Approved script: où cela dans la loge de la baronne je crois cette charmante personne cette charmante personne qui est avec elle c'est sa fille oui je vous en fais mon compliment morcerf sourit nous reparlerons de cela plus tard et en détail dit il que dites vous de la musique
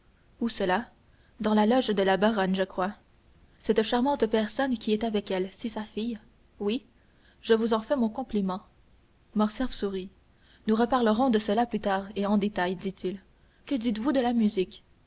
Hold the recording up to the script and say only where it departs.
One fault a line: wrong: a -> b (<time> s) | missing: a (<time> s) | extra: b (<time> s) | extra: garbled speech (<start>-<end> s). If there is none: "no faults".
missing: cette charmante personne (4.8 s)